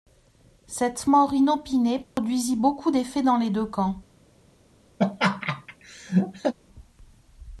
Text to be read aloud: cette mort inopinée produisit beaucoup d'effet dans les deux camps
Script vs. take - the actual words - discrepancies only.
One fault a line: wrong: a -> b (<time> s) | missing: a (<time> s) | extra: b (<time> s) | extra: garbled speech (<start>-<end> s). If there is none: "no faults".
no faults